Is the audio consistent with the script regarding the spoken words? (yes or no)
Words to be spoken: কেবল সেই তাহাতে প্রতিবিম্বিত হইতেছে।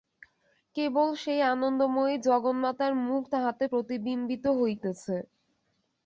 no